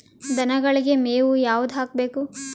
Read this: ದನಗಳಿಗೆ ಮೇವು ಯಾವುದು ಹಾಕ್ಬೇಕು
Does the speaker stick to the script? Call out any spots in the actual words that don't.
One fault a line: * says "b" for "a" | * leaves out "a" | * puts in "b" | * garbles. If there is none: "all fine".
all fine